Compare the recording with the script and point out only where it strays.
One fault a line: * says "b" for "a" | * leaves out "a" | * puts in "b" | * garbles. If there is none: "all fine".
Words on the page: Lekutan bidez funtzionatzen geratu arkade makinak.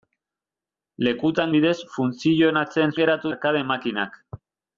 all fine